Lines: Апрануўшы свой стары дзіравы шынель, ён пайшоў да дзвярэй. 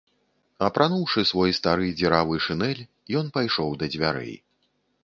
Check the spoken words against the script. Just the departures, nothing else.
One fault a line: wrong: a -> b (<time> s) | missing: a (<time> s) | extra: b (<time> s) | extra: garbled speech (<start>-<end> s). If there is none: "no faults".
no faults